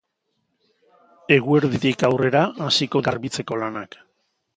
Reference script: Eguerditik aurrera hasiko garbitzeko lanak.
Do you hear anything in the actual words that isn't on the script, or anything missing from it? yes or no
no